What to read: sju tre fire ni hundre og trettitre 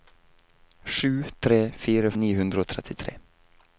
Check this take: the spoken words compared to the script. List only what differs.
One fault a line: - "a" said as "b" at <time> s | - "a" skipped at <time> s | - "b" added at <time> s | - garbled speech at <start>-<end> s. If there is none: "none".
none